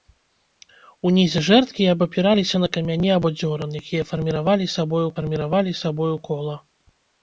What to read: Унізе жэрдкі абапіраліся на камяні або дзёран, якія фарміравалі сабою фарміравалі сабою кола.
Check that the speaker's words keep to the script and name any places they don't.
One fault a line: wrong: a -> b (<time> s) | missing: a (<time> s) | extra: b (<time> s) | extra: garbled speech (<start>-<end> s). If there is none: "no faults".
no faults